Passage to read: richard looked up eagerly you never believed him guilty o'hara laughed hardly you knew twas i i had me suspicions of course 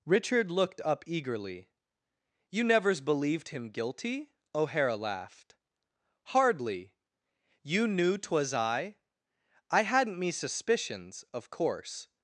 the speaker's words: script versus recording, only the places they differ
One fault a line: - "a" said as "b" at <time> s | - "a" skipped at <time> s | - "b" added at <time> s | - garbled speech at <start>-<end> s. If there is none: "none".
- "never" said as "nevers" at 2.6 s
- "had" said as "hadn't" at 9.8 s